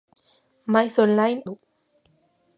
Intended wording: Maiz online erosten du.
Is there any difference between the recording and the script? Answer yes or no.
yes